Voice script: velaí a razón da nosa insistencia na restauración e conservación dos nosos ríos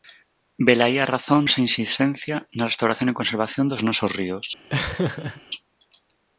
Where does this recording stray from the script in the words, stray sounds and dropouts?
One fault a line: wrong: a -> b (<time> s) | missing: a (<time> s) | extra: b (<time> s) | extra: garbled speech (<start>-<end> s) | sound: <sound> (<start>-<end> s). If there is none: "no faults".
missing: da (1.4 s)
sound: laugh (4.7-5.4 s)